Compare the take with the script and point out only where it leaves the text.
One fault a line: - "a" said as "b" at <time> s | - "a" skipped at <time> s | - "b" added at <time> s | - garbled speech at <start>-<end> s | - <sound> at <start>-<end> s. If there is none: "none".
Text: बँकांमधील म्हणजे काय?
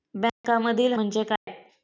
- dropout at 0.3-0.4 s
- dropout at 1.4-1.5 s